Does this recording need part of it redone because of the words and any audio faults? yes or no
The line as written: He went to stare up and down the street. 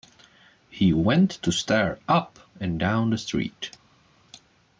no